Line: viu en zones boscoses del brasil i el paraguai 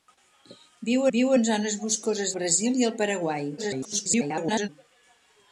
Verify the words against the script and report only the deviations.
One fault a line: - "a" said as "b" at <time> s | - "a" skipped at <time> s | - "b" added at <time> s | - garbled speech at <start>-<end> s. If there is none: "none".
- "viu" added at 1.2 s
- "del" skipped at 2.3 s
- garbled speech at 3.6-4.7 s